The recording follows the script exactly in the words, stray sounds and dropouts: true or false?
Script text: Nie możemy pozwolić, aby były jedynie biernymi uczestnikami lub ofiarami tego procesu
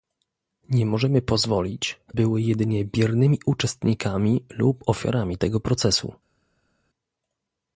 false